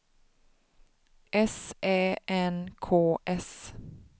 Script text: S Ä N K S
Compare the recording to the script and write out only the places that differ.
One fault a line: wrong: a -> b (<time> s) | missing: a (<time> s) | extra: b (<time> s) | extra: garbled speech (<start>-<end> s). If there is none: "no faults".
no faults